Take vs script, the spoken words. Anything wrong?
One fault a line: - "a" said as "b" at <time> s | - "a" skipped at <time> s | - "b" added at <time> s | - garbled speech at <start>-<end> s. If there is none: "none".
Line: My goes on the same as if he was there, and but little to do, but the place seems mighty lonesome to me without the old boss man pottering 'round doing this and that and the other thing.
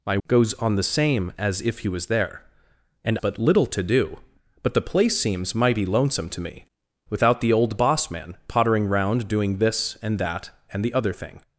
none